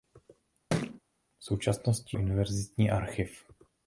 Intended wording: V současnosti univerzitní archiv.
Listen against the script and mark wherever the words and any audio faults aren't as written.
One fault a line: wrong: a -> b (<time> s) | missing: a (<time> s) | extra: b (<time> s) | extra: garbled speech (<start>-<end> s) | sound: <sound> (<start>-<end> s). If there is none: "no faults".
sound: thud (0.7-1.0 s)